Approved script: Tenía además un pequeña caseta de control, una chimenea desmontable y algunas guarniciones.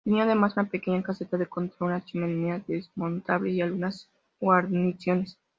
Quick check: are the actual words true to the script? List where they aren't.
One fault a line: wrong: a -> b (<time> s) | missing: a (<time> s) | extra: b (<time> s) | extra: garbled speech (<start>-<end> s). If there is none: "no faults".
wrong: un -> una (0.6 s)